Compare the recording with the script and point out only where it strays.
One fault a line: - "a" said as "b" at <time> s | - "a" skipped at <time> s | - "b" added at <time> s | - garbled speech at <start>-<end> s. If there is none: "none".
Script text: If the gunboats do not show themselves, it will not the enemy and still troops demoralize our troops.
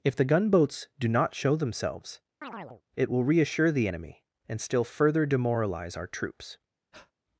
- "not" said as "reassure" at 3.2 s
- "troops" said as "further" at 4.9 s